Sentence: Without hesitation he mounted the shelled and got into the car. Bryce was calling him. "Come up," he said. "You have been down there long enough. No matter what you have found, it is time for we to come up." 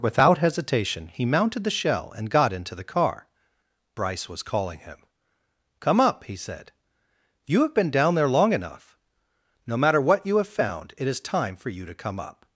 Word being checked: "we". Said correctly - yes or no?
no